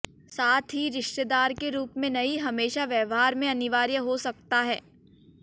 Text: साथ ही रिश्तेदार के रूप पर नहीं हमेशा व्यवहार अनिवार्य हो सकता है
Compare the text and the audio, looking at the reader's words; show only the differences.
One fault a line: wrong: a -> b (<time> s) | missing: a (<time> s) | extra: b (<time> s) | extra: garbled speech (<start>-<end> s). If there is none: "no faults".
wrong: पर -> में (2.0 s)
extra: में (3.4 s)